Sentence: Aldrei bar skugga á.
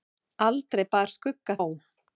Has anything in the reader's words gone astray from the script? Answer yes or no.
no